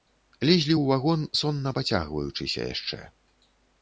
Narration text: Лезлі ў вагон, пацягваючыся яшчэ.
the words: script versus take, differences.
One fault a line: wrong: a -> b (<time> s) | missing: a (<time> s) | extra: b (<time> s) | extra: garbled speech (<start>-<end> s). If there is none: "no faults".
extra: сонна (1.4 s)